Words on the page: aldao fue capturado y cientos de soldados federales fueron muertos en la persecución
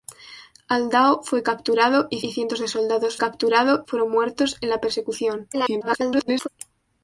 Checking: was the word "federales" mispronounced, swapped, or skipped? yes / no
yes